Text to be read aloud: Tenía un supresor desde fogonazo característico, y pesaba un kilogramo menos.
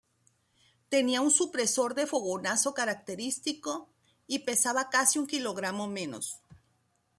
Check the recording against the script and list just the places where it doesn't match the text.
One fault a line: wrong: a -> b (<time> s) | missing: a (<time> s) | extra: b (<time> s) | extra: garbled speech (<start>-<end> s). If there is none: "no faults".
wrong: desde -> de (1.9 s)
extra: casi (4.9 s)